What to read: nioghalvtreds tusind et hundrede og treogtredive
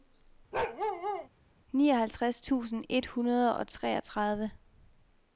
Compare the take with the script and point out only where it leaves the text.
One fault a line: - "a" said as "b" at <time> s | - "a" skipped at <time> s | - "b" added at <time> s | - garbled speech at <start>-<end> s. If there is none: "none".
none